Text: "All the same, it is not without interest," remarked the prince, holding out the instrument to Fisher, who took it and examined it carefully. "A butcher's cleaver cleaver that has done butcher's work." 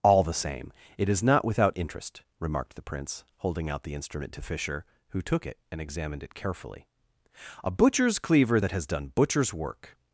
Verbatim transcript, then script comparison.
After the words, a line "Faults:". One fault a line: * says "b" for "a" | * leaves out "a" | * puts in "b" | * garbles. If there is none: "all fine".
"All the same, it is not without interest," remarked the prince, holding out the instrument to Fisher, who took it and examined it carefully. "A butcher's cleaver that has done butcher's work."
Faults:
* leaves out "cleaver"